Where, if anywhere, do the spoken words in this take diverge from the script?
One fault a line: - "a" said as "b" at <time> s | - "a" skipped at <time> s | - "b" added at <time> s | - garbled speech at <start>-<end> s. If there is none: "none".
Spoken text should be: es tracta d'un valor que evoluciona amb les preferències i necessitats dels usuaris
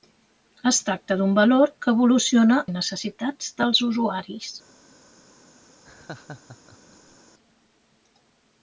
- "amb les preferències" skipped at 2.6 s